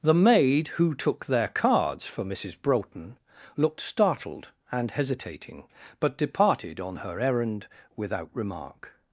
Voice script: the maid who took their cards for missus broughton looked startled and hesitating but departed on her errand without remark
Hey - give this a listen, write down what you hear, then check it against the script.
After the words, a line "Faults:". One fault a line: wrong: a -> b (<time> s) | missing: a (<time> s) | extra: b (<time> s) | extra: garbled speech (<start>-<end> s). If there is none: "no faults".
the maid who took their cards for missus broughton looked startled and hesitating but departed on her errand without remark
Faults:
no faults